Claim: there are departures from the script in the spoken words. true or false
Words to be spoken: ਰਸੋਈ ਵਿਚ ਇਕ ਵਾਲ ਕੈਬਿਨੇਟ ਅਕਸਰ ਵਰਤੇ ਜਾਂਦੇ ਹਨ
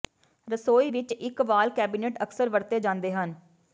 false